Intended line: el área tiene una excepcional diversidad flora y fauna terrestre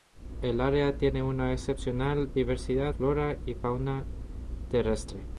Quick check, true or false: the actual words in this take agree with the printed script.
true